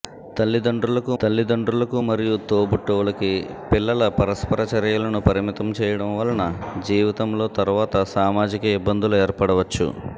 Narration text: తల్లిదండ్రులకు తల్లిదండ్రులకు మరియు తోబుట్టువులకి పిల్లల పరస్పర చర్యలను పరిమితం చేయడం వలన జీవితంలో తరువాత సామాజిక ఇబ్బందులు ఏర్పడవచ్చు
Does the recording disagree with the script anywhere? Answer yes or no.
no